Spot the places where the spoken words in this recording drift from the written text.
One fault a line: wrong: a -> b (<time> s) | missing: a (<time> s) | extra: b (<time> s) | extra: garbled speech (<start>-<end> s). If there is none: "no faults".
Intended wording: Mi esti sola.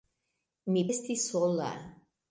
no faults